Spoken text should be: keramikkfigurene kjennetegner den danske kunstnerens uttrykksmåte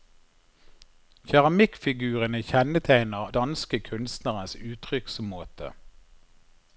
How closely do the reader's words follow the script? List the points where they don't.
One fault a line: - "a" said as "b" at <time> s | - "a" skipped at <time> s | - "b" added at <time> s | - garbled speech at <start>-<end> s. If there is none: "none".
- "den" skipped at 3.3 s